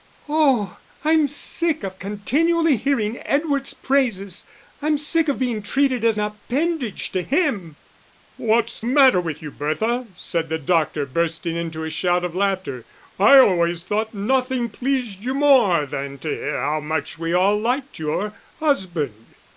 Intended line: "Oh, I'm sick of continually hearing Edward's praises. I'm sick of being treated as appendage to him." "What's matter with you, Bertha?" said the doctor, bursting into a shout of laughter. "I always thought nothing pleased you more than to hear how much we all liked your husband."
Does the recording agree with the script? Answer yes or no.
yes